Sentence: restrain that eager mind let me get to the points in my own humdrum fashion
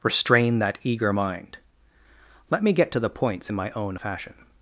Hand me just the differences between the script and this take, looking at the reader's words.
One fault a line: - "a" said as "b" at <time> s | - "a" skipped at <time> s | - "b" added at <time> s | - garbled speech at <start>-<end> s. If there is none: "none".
- "humdrum" skipped at 4.0 s